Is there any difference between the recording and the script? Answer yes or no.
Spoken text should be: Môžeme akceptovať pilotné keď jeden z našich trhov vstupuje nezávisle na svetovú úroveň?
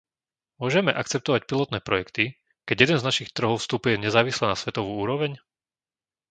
yes